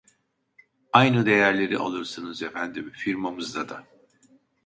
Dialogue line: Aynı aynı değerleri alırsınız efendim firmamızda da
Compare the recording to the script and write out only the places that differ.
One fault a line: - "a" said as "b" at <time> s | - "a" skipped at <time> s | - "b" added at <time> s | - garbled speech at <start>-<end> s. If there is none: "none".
- "aynı" skipped at 1.3 s